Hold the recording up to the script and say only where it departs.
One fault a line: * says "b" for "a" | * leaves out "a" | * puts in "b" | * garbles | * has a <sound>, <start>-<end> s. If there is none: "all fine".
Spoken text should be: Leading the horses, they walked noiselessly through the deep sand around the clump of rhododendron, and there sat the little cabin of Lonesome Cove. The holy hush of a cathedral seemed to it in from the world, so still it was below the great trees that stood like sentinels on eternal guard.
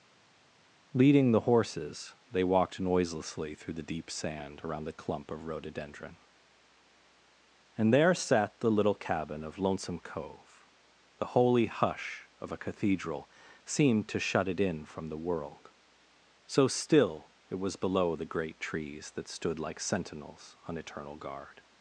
* puts in "shut"